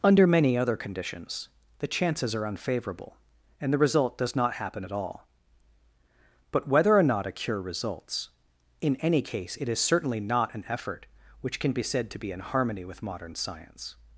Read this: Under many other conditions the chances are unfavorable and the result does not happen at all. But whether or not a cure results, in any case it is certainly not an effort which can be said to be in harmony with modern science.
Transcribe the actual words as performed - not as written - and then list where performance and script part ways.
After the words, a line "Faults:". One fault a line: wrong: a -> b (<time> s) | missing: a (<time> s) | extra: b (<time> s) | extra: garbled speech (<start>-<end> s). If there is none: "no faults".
Under many other conditions the chances are unfavorable and the result does not happen at all. But whether or not a cure results, in any case it is certainly not an effort which can be said to be in harmony with modern science.
Faults:
no faults